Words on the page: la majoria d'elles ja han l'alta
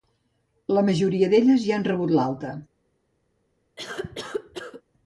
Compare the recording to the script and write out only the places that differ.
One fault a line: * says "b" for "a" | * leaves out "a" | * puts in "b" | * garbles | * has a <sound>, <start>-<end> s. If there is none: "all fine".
* puts in "rebut"
* has a cough, 3.8-4.8 s